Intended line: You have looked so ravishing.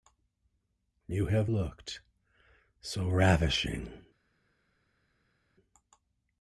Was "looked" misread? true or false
false